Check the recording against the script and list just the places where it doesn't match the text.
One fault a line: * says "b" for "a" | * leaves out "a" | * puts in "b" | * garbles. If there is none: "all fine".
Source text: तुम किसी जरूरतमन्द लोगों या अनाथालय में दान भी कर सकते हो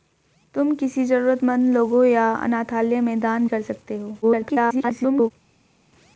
* leaves out "भी"
* garbles